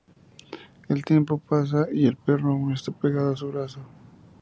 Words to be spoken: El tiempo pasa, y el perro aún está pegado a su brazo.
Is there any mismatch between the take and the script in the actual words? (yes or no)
no